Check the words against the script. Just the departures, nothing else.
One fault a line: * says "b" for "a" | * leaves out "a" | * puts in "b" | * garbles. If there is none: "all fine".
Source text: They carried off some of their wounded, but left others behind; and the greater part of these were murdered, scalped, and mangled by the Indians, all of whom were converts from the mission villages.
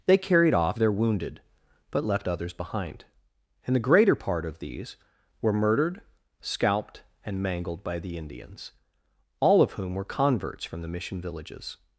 * leaves out "some of"